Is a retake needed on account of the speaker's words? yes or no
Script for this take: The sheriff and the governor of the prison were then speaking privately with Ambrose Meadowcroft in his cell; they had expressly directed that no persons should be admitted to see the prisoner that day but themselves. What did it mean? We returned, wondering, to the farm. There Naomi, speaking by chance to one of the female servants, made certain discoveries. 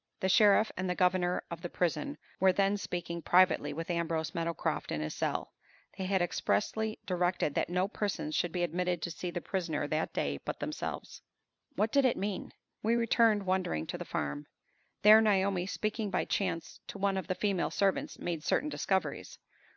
no